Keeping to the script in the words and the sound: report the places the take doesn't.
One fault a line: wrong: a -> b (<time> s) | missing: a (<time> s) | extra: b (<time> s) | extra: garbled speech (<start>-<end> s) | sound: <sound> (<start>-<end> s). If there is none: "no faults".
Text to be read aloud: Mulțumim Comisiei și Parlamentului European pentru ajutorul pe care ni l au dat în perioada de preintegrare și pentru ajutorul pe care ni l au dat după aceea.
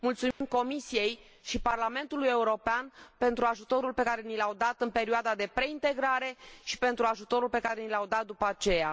sound: dropout (0.3-0.4 s)